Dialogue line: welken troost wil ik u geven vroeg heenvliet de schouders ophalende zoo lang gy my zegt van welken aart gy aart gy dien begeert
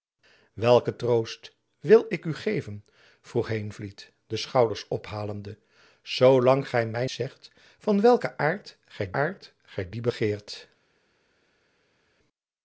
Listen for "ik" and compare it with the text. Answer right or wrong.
right